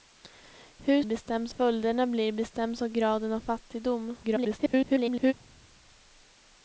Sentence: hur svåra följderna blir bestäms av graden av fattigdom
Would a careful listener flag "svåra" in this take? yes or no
yes